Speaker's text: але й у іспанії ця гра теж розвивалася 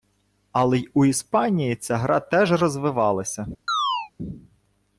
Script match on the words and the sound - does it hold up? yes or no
no